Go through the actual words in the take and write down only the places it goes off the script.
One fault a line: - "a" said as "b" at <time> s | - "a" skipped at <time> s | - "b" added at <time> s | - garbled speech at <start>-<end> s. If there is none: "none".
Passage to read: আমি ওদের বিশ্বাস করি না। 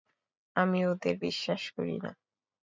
none